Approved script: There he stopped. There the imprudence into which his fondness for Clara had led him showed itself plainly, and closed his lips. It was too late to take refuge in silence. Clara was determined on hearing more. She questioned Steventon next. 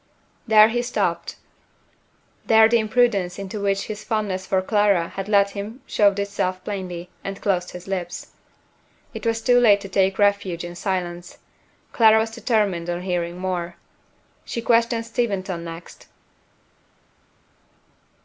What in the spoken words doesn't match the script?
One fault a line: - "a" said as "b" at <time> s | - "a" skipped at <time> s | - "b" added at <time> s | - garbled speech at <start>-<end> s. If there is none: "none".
none